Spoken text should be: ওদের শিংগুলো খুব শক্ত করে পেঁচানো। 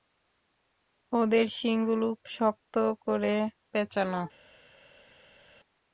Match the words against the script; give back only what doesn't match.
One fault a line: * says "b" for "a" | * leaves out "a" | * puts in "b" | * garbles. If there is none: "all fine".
* leaves out "খুব"